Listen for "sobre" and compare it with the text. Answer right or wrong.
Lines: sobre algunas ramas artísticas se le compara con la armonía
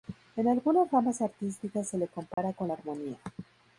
wrong